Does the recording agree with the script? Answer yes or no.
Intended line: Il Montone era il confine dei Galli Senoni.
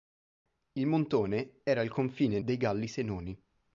yes